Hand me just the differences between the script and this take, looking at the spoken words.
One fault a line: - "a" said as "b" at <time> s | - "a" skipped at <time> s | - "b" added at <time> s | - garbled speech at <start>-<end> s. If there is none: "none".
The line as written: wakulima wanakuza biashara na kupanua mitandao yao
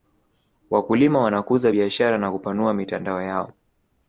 none